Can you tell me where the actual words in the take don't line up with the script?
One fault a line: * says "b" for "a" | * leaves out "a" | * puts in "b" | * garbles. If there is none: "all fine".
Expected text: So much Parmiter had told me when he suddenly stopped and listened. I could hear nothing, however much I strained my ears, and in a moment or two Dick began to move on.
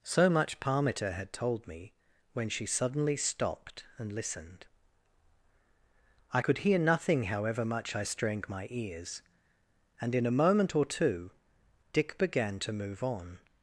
* says "she" for "he"